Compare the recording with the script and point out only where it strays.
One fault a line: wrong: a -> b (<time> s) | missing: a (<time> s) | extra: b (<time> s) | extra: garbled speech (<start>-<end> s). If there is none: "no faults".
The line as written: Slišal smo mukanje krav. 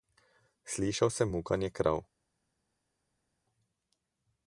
wrong: smo -> sem (1.1 s)